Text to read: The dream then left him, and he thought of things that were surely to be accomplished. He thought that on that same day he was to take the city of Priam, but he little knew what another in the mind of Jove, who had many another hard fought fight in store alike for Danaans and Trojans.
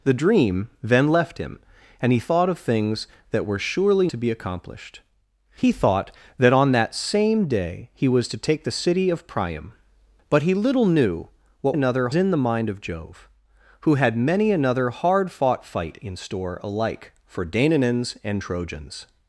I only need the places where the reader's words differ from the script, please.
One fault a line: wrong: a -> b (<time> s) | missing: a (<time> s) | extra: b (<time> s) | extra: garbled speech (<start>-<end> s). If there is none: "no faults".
no faults